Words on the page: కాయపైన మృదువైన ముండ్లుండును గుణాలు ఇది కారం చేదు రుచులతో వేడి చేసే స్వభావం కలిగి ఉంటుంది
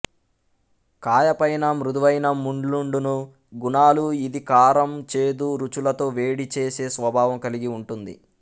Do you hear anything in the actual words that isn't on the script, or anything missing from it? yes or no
no